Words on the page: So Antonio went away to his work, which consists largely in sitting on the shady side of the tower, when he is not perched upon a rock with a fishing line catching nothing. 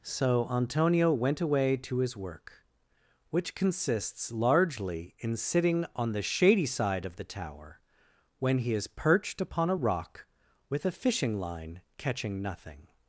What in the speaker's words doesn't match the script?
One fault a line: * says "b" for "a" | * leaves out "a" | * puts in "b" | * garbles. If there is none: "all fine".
* leaves out "not"